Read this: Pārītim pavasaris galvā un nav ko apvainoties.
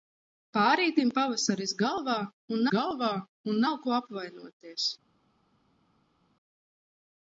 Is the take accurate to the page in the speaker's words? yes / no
no